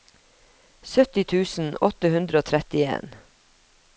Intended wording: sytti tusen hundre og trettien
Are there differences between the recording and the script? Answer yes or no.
yes